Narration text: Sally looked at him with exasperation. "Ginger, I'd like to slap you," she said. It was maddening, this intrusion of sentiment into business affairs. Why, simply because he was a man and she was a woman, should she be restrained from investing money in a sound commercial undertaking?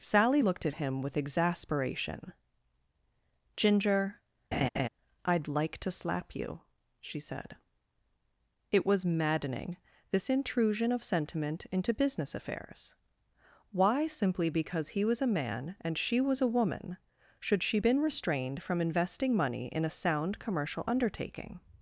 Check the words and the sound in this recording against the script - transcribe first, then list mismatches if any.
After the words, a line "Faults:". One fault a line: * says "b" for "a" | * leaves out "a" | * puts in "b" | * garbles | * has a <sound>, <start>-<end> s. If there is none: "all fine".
Sally looked at him with exasperation. "Ginger, I'd like to slap you," she said. It was maddening, this intrusion of sentiment into business affairs. Why, simply because he was a man and she was a woman, should she been restrained from investing money in a sound commercial undertaking?
Faults:
* has a laugh, 4.5-4.9 s
* says "been" for "be"